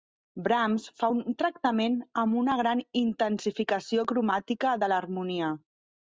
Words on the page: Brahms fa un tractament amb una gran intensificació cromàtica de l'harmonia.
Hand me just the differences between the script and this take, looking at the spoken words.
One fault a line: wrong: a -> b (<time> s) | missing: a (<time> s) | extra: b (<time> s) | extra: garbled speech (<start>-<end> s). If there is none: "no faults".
no faults